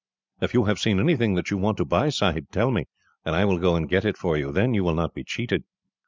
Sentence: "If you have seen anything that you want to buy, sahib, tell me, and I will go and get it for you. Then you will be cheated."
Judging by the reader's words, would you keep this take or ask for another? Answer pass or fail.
fail